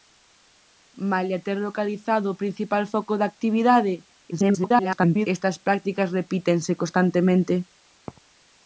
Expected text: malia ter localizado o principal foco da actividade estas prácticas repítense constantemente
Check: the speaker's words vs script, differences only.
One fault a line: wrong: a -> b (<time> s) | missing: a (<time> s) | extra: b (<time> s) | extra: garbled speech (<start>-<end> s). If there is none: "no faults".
extra: garbled speech (4.3-5.3 s)